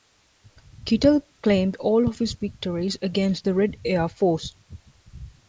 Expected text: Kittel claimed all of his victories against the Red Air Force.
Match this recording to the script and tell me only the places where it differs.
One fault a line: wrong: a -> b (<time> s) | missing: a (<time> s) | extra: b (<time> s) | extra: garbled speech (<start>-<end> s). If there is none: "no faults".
no faults